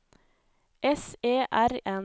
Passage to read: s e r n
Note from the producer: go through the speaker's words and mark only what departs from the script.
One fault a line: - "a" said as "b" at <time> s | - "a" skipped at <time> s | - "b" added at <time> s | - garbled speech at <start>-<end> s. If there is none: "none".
none